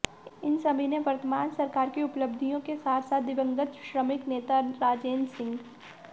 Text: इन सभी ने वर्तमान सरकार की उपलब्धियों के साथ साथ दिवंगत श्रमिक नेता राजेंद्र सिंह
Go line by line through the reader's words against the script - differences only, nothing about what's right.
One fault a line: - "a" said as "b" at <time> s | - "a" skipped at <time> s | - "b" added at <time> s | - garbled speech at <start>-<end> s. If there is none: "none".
none